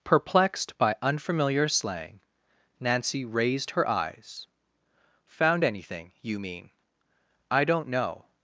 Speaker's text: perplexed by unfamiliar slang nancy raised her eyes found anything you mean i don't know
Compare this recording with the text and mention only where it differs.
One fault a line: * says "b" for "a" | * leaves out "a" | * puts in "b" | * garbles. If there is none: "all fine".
all fine